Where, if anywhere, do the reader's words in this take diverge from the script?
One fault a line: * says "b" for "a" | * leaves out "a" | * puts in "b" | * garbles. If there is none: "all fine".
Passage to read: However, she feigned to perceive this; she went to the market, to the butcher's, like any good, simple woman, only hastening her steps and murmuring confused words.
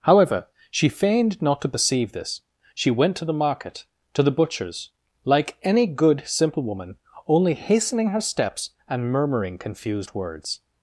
* puts in "not"